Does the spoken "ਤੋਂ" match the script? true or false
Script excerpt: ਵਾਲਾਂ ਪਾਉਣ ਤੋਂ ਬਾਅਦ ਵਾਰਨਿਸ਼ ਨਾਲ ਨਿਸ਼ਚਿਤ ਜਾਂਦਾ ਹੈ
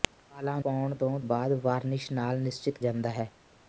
true